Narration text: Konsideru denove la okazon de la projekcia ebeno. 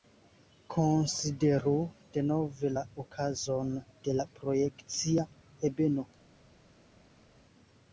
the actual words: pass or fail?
pass